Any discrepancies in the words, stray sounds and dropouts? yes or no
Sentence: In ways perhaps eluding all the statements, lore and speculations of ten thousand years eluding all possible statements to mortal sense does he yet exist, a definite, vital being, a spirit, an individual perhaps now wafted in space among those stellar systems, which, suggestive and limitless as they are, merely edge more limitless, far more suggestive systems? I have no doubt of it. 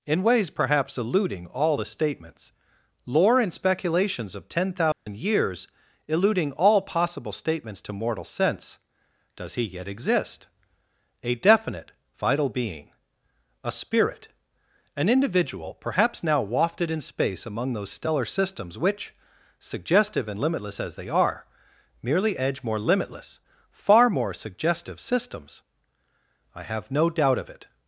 yes